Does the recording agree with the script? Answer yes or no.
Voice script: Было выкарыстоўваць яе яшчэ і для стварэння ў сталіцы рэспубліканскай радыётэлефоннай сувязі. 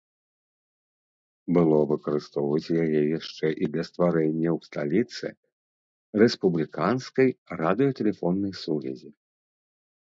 yes